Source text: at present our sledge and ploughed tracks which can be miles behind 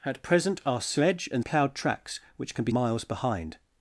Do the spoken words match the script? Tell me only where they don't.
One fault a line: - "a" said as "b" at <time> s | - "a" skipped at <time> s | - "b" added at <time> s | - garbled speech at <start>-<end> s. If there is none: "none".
none